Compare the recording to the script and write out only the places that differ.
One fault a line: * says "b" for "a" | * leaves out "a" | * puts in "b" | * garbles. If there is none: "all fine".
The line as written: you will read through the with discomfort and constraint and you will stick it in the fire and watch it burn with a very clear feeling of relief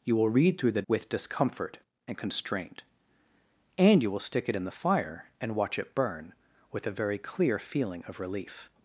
all fine